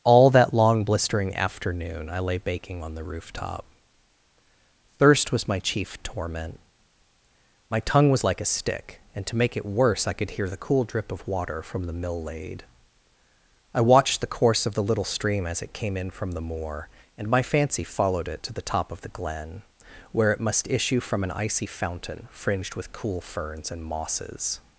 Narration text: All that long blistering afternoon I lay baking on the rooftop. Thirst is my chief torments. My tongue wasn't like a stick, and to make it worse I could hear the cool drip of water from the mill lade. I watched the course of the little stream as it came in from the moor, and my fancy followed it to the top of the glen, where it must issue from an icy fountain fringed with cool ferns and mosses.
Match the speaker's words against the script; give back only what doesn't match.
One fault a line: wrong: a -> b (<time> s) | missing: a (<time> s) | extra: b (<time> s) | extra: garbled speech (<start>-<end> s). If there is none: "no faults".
wrong: is -> was (5.3 s)
wrong: torments -> torment (6.0 s)
wrong: wasn't -> was (8.1 s)